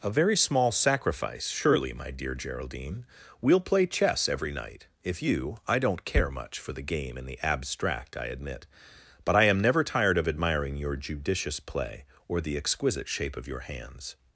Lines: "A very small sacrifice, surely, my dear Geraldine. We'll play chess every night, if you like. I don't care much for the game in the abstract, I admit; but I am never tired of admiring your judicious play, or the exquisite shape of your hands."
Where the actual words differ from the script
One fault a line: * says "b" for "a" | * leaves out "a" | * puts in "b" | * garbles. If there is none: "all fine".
* leaves out "like"